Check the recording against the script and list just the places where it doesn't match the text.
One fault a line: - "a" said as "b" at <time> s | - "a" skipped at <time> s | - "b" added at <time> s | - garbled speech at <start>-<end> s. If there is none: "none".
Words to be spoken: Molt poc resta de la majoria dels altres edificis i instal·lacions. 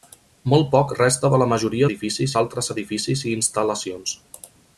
- "dels" said as "edificis" at 1.9 s